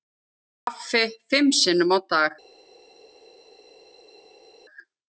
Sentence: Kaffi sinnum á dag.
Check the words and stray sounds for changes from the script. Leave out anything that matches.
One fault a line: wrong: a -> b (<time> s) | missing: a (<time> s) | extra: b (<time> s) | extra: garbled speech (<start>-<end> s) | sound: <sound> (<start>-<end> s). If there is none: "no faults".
extra: fimm (1.3 s)